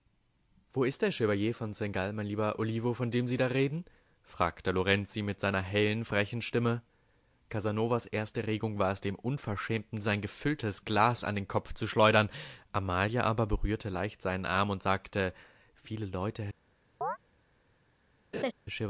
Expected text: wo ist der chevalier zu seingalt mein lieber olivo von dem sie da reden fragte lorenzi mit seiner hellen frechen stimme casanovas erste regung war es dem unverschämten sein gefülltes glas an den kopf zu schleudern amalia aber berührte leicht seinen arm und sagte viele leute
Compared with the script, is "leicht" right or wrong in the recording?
right